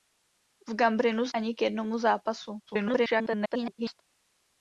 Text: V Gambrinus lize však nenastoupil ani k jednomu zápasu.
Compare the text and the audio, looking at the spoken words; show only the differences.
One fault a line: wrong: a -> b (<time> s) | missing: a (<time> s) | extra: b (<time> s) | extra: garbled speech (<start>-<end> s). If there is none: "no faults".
missing: lize však nenastoupil (1.3 s)
extra: garbled speech (2.7-4.0 s)